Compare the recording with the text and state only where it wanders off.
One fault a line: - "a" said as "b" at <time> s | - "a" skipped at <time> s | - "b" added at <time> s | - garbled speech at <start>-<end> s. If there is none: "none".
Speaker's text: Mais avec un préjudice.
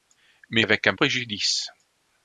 none